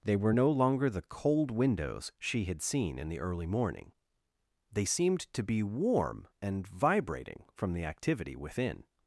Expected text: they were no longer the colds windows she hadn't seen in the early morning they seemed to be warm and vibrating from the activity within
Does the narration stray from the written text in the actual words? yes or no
yes